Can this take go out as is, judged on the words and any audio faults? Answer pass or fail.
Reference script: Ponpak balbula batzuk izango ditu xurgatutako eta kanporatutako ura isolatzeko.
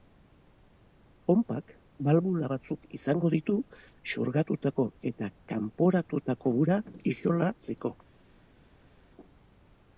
pass